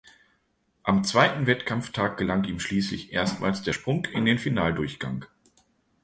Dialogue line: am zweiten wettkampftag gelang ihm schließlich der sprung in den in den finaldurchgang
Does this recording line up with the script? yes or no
no